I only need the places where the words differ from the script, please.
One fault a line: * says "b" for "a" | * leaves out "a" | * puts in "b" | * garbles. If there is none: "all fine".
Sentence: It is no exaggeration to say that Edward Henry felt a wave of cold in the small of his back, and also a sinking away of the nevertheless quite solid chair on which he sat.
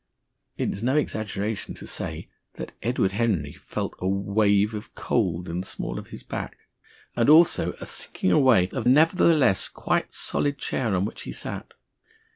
* leaves out "the"